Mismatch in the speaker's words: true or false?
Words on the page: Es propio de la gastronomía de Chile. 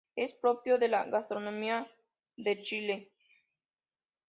false